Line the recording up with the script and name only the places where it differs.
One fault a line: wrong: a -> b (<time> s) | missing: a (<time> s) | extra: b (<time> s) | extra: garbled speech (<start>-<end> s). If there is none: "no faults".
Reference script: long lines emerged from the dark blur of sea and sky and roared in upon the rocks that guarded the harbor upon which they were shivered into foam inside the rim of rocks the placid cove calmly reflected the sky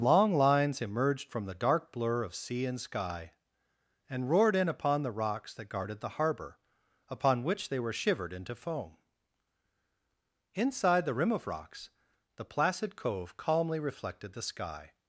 no faults